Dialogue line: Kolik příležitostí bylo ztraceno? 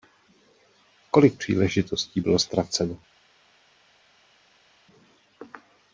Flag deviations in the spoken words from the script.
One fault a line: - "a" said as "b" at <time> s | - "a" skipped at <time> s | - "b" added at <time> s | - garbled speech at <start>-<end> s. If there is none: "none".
none